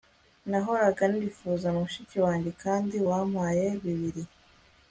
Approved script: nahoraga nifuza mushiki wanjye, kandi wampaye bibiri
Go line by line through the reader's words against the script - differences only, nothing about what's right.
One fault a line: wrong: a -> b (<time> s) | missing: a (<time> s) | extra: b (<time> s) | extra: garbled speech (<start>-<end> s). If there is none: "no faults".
no faults